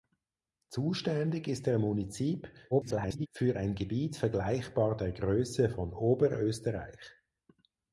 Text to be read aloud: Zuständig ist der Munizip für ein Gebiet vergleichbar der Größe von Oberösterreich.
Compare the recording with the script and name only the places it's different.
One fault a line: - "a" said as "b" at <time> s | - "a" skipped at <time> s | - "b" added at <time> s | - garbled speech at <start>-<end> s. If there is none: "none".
- garbled speech at 2.7-3.3 s